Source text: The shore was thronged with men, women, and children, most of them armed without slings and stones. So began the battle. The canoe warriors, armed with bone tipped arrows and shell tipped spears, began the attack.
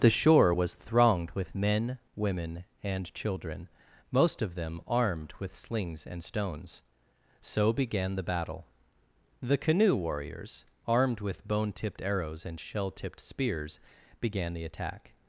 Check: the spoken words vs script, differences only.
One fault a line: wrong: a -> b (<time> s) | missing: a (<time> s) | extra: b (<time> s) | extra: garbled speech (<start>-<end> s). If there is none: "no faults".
wrong: without -> with (5.4 s)